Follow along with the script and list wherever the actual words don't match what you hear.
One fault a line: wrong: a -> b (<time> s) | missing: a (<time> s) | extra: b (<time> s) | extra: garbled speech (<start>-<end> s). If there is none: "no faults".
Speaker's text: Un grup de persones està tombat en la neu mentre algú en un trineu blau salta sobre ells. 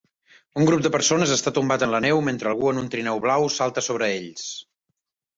no faults